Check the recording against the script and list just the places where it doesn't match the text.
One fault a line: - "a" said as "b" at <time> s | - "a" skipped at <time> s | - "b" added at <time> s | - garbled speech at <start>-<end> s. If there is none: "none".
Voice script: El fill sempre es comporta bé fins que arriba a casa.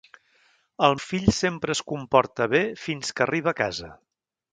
none